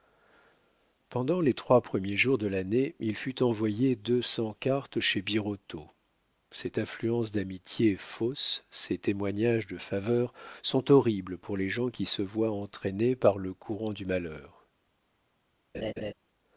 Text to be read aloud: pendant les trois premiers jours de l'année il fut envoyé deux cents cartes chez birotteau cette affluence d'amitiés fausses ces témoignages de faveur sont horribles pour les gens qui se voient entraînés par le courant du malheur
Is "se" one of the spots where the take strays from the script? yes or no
no